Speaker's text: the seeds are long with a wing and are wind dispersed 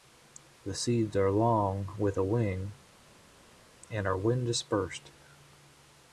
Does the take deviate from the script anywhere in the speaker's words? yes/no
no